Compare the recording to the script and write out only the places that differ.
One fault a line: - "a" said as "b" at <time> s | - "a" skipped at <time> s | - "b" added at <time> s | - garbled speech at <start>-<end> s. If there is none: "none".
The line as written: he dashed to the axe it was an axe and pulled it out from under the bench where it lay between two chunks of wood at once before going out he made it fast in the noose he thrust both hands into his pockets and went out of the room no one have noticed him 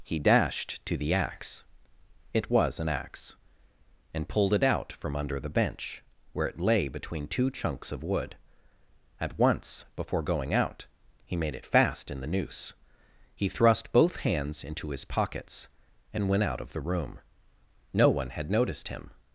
- "have" said as "had" at 18.3 s